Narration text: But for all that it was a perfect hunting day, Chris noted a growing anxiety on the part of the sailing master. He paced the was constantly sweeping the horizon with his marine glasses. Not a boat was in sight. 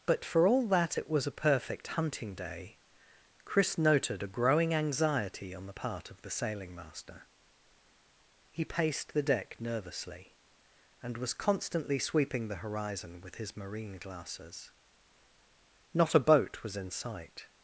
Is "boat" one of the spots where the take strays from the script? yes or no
no